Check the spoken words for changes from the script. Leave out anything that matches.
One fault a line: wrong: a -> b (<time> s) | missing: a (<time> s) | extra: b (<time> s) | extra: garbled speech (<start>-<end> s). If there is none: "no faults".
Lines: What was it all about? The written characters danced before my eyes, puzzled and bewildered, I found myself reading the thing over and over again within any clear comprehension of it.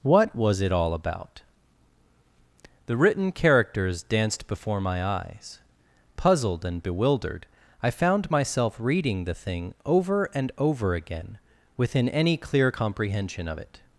no faults